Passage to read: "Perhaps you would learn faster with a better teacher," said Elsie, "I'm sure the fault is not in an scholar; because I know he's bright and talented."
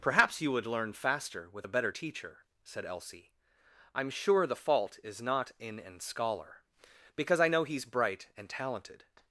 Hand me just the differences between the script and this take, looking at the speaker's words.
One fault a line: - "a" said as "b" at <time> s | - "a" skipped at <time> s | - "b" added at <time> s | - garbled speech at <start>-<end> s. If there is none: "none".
none